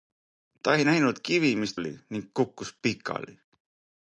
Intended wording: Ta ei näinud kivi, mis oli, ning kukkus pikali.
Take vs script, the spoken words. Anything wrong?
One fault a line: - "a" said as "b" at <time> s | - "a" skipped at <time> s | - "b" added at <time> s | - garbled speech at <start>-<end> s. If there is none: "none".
none